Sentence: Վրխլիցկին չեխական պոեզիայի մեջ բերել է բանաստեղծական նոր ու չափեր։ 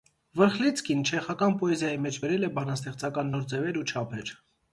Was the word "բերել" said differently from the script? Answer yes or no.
no